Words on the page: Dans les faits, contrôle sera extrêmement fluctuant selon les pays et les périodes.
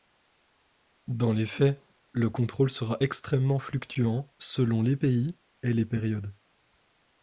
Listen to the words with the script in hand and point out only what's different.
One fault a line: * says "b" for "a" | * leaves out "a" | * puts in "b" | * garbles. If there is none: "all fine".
* puts in "le"